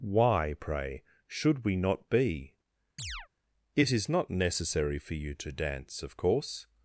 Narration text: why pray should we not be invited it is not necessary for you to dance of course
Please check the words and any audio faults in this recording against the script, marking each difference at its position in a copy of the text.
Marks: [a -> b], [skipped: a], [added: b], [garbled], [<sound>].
why pray should we not be [skipped: invited] [chirp] it is not necessary for you to dance of course